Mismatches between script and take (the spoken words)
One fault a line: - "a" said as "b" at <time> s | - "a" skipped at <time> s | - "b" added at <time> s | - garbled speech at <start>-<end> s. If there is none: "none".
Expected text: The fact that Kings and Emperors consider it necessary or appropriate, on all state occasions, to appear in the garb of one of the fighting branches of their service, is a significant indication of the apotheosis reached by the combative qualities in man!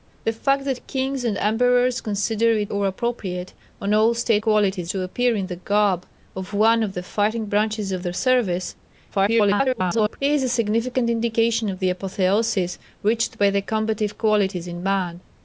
- "necessary" skipped at 2.7 s
- "occasions" said as "qualities" at 4.4 s
- garbled speech at 9.1-10.2 s